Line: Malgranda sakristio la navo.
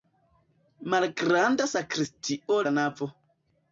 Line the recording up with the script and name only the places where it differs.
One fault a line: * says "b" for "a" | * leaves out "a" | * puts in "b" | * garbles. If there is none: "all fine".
all fine